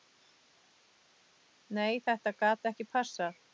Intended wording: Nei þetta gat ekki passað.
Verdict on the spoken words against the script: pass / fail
pass